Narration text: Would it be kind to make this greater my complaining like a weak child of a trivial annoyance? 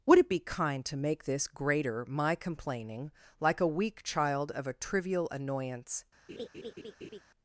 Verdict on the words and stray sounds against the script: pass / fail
fail